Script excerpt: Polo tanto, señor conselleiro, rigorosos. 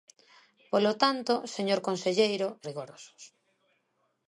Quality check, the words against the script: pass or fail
pass